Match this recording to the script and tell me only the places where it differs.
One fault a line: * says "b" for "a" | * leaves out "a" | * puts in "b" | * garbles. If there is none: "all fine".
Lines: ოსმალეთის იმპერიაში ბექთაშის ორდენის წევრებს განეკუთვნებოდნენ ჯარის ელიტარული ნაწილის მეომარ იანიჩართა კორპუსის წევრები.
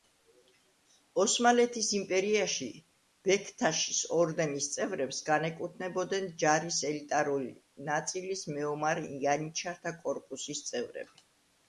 all fine